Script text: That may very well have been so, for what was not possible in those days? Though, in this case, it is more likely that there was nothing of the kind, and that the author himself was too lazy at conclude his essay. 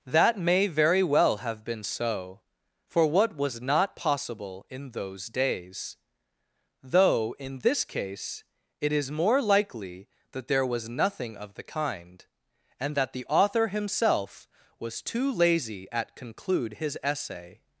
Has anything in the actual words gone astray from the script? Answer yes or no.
no